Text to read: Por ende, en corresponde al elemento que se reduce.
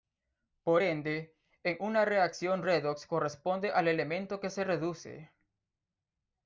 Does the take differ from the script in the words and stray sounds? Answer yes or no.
yes